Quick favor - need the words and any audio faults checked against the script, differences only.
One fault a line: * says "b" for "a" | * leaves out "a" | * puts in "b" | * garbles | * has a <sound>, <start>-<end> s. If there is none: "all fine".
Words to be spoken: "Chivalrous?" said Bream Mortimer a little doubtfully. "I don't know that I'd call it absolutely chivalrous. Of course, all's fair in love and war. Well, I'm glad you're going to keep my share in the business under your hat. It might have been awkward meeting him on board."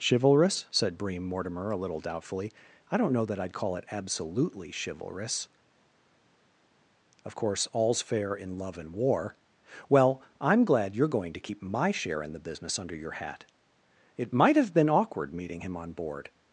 all fine